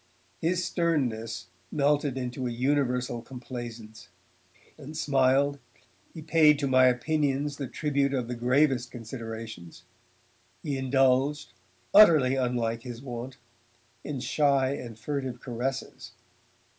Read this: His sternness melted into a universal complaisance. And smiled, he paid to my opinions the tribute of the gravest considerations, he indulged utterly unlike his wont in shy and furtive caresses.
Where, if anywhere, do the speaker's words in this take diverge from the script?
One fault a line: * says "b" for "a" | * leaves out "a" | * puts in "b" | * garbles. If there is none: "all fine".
all fine